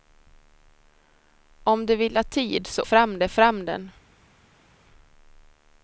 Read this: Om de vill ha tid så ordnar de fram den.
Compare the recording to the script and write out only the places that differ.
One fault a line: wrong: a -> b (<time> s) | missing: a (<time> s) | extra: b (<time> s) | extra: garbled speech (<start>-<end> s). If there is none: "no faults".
wrong: ordnar -> fram (2.8 s)